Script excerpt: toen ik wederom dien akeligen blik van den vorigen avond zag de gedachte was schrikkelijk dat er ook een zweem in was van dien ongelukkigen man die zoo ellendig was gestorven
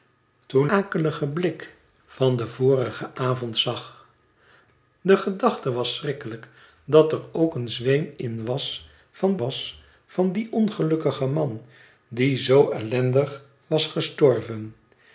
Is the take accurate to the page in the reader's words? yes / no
no